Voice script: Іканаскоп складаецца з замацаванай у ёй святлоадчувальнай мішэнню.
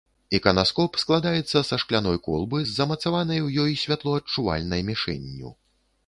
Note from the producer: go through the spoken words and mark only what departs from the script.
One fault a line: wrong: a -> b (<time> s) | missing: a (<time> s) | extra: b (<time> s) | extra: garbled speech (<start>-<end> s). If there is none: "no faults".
extra: са шкляной колбы (1.7 s)